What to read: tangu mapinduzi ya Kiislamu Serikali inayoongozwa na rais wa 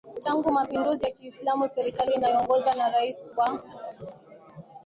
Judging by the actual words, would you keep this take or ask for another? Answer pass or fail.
pass